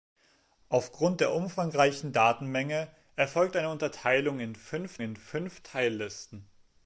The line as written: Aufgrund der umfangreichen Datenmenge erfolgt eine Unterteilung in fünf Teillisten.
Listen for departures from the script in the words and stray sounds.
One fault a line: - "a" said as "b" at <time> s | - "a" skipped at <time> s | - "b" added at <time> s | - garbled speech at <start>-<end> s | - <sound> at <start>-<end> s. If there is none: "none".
- "in fünf" added at 5.0 s